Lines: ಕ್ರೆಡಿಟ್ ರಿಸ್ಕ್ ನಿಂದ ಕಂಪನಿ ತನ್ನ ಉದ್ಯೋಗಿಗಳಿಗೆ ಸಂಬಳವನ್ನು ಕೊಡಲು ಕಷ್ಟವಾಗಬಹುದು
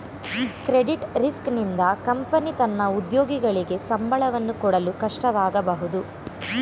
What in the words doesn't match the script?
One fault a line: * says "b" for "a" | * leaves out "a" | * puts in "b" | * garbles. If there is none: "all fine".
all fine